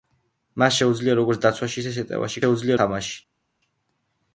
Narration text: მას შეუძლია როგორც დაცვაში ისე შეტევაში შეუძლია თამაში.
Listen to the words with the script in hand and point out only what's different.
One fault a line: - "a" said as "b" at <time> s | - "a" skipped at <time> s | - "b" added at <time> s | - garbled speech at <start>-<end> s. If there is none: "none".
none